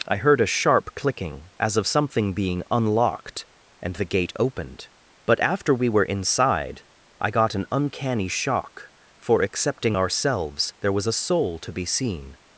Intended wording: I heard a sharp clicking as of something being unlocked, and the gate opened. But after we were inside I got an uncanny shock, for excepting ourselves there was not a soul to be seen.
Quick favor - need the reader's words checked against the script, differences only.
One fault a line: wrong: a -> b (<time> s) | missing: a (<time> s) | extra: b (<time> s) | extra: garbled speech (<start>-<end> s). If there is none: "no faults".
missing: not (11.0 s)